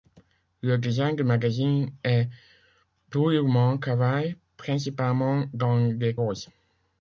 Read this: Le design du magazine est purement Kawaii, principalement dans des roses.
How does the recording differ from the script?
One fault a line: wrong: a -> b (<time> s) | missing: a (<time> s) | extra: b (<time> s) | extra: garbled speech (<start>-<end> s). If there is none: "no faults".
no faults